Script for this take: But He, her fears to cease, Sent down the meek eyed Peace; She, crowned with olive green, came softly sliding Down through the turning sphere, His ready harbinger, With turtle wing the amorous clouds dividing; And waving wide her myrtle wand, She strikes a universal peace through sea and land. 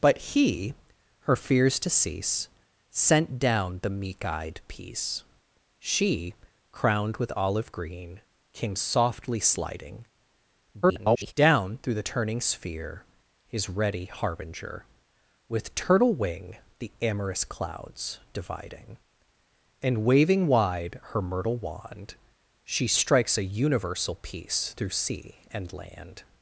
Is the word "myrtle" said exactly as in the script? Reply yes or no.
yes